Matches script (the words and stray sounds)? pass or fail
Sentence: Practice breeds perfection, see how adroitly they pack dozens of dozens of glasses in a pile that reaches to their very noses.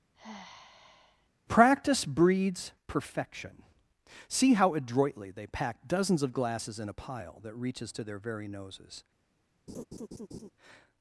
fail